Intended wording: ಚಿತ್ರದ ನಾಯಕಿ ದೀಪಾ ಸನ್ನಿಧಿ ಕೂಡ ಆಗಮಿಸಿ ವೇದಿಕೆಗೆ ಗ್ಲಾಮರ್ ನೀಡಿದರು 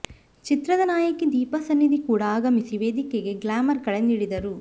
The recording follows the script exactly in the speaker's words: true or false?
false